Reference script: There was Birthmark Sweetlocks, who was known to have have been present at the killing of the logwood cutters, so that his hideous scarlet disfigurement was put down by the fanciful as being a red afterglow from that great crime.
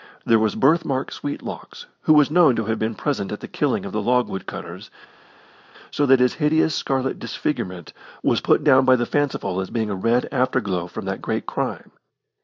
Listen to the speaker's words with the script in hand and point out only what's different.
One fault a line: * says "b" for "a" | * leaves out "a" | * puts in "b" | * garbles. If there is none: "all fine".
* leaves out "have"